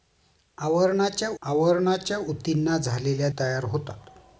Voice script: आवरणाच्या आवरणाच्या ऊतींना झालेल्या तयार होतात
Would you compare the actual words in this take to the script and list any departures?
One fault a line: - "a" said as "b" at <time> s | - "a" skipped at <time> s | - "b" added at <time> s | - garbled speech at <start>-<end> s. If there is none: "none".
none